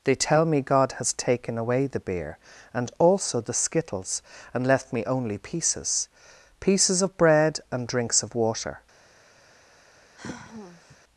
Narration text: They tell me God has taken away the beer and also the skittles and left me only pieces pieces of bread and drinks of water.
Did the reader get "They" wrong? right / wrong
right